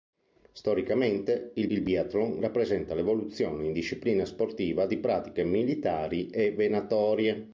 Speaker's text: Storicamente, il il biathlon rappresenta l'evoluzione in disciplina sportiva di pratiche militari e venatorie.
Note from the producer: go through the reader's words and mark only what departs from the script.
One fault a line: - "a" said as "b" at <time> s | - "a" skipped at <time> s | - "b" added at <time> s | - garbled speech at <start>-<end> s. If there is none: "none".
none